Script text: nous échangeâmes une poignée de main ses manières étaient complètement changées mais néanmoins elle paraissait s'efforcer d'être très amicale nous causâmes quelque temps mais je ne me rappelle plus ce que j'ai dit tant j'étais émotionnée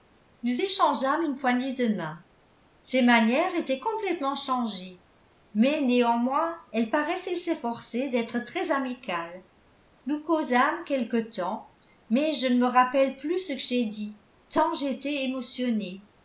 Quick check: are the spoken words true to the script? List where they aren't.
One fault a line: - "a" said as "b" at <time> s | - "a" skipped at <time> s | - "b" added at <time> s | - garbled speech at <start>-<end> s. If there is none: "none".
none